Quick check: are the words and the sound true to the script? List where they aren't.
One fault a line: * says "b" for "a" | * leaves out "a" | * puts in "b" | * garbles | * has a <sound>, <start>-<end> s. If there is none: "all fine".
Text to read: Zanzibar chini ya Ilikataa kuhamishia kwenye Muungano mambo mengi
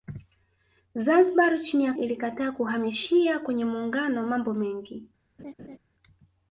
* has a laugh, 5.4-5.8 s